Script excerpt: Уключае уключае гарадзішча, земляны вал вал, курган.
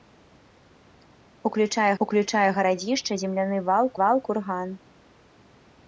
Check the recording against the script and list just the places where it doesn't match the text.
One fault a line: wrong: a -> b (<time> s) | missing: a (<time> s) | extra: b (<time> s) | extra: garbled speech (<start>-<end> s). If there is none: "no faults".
no faults